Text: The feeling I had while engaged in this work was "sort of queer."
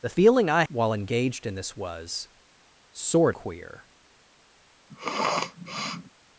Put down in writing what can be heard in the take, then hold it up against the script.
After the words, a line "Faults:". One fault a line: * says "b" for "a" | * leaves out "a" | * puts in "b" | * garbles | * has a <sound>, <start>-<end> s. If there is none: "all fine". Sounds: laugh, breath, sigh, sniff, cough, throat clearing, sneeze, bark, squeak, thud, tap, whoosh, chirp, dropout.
The feeling I while engaged in this was "sort queer."
Faults:
* leaves out "had"
* leaves out "work"
* leaves out "of"
* has a sniff, 4.9-6.1 s